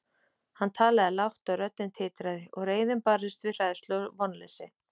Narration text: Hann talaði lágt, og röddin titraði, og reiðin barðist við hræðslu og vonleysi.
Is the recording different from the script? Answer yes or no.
no